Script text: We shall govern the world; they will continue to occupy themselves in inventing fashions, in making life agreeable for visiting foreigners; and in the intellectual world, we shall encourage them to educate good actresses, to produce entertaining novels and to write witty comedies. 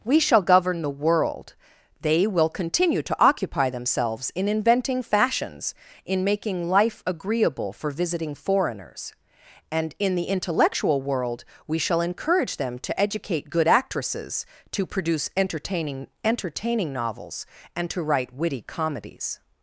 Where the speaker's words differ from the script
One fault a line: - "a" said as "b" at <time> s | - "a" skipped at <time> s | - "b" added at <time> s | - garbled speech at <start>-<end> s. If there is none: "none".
- "entertaining" added at 16.2 s